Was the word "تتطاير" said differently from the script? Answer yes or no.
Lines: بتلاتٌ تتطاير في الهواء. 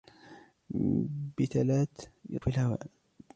yes